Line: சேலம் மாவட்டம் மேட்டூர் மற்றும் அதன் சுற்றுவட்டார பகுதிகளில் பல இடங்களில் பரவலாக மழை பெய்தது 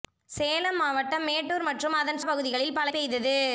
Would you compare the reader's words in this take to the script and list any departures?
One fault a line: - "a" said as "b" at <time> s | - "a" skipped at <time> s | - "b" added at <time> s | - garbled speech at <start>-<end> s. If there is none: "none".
- "சுற்றுவட்டார" skipped at 2.2 s
- "இடங்களில் பரவலாக மழை" skipped at 2.9 s